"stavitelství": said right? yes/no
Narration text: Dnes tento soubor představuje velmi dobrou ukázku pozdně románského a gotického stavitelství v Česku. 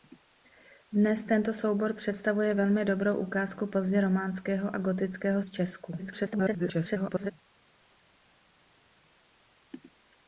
no